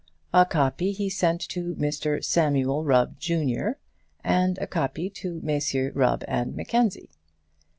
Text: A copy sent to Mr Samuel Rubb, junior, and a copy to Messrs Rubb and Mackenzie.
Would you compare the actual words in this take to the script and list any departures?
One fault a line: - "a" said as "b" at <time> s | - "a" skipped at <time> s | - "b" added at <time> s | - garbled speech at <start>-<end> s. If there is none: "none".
- "he" added at 0.9 s